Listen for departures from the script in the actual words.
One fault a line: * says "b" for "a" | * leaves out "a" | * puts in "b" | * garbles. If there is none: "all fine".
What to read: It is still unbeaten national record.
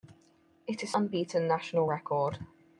* leaves out "still"